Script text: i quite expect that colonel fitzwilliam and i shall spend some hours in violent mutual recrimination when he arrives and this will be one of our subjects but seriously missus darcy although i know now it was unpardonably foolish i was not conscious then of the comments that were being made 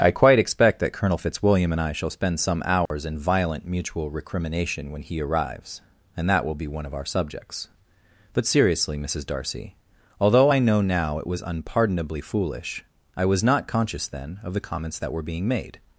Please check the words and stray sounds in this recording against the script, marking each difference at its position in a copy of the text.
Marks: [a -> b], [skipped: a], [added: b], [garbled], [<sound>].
i quite expect that colonel fitzwilliam and i shall spend some hours [dropout] in violent mutual recrimination when he arrives and [this -> that] will be one of our subjects but seriously missus darcy although i know now it was unpardonably foolish i was not conscious then of the comments that were being made